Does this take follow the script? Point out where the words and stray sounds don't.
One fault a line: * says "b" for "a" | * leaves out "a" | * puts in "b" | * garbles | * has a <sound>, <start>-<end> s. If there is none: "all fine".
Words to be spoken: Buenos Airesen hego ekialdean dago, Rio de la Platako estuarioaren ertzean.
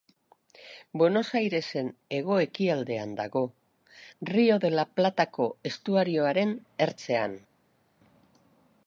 all fine